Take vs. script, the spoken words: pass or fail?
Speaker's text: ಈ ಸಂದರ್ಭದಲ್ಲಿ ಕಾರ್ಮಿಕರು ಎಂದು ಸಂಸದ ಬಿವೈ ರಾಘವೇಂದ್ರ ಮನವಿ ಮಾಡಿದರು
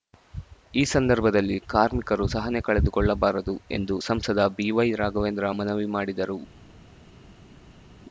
fail